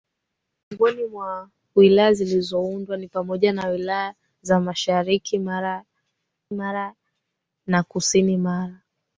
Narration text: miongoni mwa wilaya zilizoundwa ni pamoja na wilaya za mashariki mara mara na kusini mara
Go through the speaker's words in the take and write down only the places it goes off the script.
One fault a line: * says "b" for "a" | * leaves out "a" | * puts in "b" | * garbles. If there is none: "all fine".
all fine